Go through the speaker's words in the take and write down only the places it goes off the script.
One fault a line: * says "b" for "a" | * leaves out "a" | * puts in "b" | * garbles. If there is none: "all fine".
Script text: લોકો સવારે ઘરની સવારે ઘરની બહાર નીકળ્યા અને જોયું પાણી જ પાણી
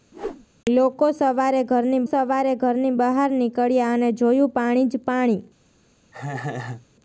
all fine